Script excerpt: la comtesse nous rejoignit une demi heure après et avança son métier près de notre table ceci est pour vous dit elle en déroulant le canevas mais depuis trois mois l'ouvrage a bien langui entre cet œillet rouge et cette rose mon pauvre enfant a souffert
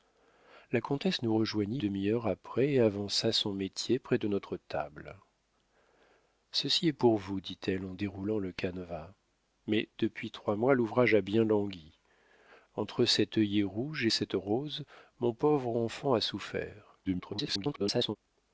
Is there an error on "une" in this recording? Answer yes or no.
yes